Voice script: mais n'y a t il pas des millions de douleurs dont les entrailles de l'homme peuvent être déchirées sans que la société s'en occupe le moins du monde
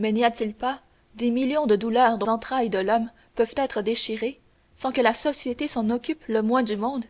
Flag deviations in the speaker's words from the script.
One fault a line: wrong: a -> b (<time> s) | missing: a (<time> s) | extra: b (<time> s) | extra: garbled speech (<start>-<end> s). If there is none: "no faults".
missing: les (2.3 s)